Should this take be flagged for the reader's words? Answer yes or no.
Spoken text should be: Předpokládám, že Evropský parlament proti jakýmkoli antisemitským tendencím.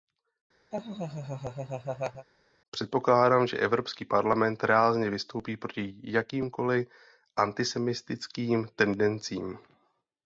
yes